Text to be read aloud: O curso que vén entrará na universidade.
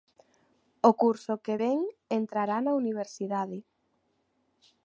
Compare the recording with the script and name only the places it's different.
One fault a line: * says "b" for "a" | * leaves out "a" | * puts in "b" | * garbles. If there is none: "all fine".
all fine